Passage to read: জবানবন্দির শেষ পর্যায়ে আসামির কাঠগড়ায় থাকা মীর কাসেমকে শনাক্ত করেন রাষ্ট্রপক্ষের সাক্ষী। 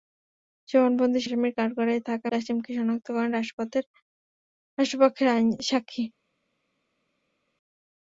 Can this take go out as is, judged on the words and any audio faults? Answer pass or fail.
fail